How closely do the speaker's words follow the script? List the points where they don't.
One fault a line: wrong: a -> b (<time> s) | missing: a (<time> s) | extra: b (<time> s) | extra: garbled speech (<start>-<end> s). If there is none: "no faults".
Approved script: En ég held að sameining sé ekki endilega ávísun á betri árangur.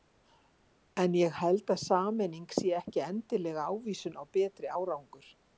no faults